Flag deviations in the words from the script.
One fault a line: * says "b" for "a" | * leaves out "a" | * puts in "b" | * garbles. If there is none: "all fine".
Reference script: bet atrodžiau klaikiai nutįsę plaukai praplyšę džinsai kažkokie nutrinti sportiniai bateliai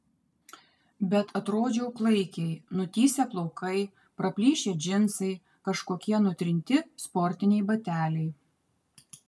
all fine